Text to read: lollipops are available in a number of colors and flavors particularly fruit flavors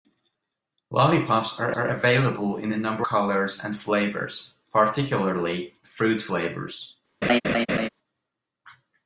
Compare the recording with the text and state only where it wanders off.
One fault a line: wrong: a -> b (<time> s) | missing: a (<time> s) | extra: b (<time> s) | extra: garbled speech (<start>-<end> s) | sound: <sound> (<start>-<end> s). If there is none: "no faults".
extra: are (1.8 s)
missing: of (3.1 s)
sound: laugh (7.2-7.9 s)